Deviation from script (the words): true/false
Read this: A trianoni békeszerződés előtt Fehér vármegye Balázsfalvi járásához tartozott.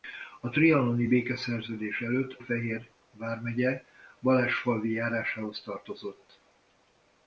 false